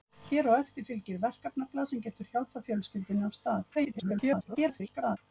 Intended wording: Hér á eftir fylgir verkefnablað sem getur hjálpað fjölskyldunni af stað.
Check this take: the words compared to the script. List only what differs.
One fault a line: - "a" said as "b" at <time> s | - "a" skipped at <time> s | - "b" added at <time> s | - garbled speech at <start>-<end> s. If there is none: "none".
- garbled speech at 3.7-5.2 s